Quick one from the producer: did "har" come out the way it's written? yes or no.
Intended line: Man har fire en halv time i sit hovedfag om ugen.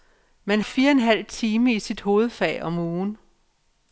no